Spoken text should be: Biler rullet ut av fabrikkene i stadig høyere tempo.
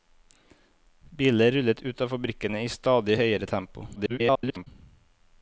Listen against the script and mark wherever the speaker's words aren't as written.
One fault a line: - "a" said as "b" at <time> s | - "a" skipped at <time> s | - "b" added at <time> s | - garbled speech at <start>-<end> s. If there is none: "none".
- garbled speech at 4.0-4.7 s